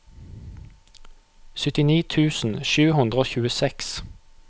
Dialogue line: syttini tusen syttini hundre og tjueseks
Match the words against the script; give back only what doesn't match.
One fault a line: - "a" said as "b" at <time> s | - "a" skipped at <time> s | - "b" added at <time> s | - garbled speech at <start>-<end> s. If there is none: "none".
- "syttini" said as "sju" at 2.7 s